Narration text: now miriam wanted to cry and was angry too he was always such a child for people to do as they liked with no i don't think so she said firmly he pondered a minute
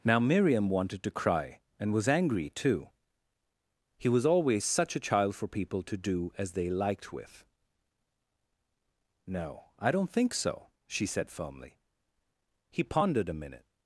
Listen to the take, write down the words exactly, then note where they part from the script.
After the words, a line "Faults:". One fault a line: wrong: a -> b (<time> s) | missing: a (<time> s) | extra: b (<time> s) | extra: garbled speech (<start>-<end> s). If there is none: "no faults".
now miriam wanted to cry and was angry too he was always such a child for people to do as they liked with no i don't think so she said firmly he pondered a minute
Faults:
no faults